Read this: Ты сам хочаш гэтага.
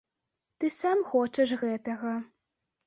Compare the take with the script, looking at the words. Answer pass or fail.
pass